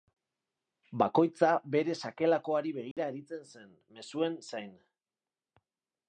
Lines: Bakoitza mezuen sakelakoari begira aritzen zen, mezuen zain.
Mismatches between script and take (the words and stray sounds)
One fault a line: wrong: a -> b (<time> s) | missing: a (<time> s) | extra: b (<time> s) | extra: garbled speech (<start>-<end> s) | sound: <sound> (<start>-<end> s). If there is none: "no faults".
wrong: mezuen -> bere (1.8 s)
sound: dropout (2.9-3.0 s)